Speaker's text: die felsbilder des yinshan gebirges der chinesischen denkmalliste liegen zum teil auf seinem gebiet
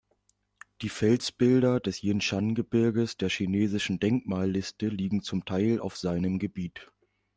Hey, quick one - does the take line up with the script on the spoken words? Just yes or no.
yes